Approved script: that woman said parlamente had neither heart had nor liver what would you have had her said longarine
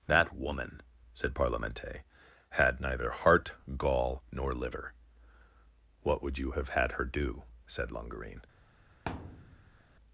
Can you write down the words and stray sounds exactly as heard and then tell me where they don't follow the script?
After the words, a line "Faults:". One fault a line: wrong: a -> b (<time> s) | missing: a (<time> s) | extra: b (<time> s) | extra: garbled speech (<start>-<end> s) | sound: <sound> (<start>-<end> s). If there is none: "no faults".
that woman said parlamente had neither heart gall nor liver what would you have had her do said longarine
Faults:
wrong: had -> gall (3.8 s)
extra: do (7.0 s)
sound: thud (9.1-9.8 s)